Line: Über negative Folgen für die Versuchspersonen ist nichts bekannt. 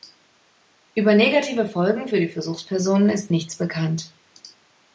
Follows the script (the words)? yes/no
yes